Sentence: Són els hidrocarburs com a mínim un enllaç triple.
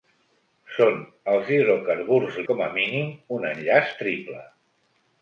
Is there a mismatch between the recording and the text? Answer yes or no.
no